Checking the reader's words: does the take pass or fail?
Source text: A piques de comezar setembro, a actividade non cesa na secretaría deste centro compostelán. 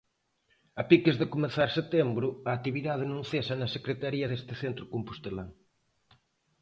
pass